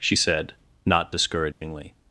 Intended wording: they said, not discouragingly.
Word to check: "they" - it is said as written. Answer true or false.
false